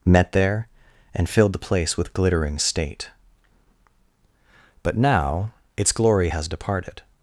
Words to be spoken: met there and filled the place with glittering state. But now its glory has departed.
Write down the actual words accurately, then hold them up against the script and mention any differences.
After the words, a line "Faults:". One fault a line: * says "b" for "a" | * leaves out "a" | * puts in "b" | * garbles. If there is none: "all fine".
met there and filled the place with glittering state. But now its glory has departed.
Faults:
all fine